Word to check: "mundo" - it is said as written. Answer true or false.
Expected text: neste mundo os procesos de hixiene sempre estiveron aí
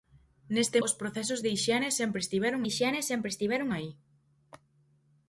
false